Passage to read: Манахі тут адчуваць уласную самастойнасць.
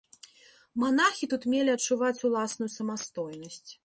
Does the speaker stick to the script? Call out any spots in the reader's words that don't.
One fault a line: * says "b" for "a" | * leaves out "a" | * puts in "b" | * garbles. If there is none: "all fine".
* puts in "мелі"